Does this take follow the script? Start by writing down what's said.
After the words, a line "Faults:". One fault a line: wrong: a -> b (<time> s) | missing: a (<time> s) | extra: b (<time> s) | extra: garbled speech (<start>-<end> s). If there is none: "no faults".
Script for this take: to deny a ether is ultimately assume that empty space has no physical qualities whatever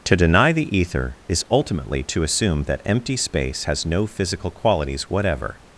to deny the ether is ultimately to assume that empty space has no physical qualities whatever
Faults:
wrong: a -> the (0.5 s)
extra: to (2.0 s)